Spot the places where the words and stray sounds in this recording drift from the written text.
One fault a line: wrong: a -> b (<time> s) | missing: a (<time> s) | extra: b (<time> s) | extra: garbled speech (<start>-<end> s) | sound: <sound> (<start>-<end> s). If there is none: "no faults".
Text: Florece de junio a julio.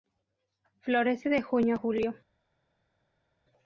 no faults